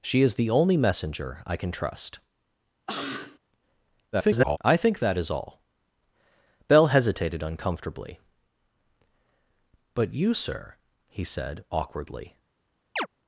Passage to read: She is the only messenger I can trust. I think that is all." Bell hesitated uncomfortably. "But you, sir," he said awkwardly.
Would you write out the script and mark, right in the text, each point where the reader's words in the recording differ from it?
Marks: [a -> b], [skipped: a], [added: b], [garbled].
She is the only messenger I can trust. [garbled] I think that is all." Bell hesitated uncomfortably. "But you, sir," he said awkwardly.